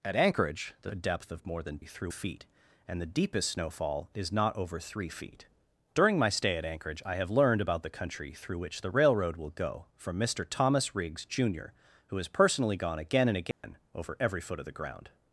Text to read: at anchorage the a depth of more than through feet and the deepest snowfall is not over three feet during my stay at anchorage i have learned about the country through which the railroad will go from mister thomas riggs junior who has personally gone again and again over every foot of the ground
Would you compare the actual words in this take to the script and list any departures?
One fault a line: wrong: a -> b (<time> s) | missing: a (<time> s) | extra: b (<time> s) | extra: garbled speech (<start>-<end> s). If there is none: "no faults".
no faults